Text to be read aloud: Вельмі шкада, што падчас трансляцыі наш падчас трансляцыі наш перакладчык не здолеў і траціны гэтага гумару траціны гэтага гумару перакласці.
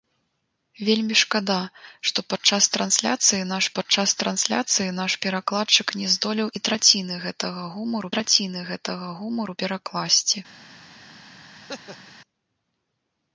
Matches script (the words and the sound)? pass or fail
fail